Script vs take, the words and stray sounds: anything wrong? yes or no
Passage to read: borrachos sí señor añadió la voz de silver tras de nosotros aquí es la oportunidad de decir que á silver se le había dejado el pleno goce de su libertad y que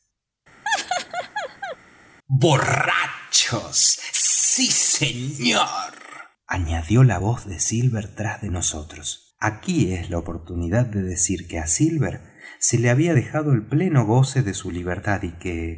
yes